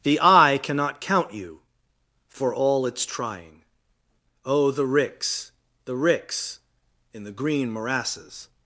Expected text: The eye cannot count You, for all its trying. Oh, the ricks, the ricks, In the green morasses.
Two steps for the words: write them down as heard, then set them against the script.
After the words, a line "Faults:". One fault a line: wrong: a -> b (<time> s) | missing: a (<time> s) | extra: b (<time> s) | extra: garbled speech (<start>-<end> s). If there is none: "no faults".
The eye cannot count You, for all its trying. Oh, the ricks, the ricks, In the green morasses.
Faults:
no faults